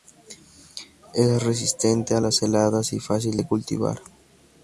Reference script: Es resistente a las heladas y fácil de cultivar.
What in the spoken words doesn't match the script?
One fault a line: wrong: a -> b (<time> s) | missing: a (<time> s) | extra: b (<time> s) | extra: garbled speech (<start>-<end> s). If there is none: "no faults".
no faults